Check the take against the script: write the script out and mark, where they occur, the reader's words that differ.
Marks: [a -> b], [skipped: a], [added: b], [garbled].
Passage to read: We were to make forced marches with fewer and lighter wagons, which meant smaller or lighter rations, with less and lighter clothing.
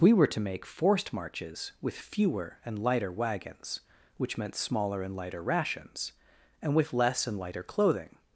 We were to make forced marches with fewer and lighter wagons, which meant smaller [or -> and] lighter rations, [added: and] with less and lighter clothing.